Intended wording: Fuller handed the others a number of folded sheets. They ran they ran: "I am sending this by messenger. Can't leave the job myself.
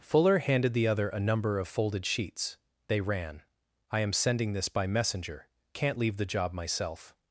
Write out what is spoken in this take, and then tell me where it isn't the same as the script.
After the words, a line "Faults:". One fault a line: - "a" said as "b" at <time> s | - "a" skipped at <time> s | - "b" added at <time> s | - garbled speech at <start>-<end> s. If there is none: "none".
Fuller handed the other a number of folded sheets. They ran: "I am sending this by messenger. Can't leave the job myself.
Faults:
- "others" said as "other" at 0.9 s
- "they ran" skipped at 3.4 s